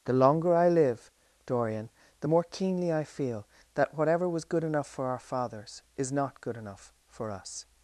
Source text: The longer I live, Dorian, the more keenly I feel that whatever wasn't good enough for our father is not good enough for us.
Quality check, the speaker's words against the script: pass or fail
fail